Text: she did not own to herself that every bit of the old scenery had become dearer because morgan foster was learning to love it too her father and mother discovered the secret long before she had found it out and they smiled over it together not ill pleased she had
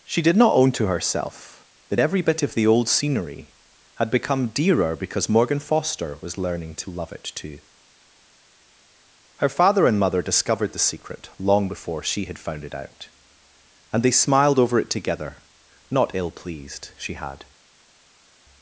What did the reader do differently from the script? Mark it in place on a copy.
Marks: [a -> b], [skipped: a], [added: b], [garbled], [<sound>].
she did not own to herself that every bit of the old scenery had become dearer because morgan foster was learning to love it too her father and mother discovered the secret long before she had found it out and they smiled over it together not ill pleased she had